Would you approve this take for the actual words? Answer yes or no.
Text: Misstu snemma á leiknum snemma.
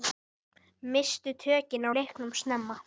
no